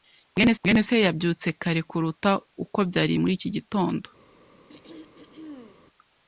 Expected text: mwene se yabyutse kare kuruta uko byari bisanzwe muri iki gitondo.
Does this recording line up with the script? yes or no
no